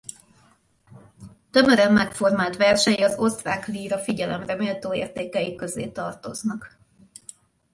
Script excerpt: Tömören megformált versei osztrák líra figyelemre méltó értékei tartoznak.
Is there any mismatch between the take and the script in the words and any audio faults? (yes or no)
yes